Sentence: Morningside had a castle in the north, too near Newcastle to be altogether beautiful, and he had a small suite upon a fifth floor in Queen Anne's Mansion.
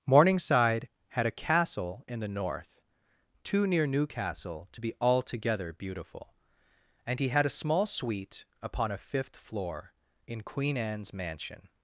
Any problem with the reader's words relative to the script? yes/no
no